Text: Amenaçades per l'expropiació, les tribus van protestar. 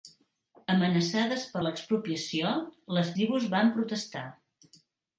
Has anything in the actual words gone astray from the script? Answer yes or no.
no